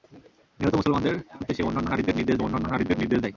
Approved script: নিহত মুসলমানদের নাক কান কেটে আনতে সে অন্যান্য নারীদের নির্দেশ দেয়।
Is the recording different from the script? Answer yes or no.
yes